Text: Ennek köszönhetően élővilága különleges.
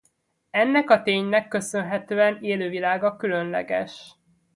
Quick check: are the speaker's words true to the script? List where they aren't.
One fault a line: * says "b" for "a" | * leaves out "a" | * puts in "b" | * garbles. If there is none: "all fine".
* puts in "a ténynek"